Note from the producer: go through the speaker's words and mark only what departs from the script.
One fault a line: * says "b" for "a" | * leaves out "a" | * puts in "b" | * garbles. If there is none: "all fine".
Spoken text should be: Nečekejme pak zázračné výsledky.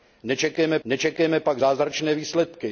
* puts in "nečekejme"